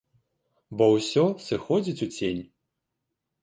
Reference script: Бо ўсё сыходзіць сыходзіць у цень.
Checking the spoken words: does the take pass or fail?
fail